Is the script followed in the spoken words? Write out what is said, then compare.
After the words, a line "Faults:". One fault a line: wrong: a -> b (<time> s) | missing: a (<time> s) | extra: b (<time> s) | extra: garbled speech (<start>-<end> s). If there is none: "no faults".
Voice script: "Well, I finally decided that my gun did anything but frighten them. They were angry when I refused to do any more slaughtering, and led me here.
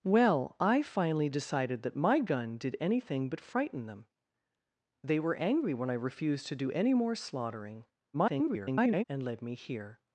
"Well, I finally decided that my gun did anything but frighten them. They were angry when I refused to do any more slaughtering, [garbled] and led me here.
Faults:
extra: garbled speech (8.1-9.0 s)